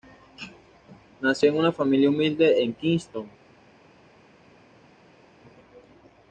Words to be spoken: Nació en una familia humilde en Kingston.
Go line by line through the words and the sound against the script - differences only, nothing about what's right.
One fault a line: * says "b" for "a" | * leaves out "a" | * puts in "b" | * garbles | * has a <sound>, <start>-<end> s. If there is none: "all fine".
all fine